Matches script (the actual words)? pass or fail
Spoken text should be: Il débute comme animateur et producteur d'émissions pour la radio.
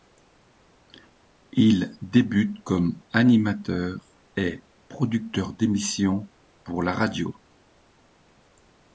pass